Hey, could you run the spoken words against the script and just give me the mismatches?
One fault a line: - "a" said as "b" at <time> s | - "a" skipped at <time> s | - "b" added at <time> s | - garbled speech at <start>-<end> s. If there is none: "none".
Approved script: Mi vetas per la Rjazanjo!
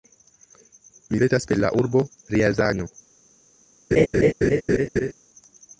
- "urbo" added at 1.8 s